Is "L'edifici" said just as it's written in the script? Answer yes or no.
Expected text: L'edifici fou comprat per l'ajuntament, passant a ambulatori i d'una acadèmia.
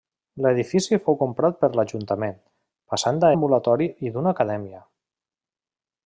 yes